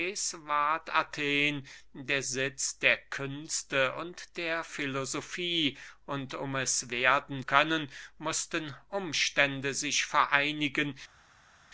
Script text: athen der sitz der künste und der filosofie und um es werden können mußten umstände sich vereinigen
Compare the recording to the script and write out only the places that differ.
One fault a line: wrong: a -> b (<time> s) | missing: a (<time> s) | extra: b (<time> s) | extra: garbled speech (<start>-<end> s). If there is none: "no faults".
no faults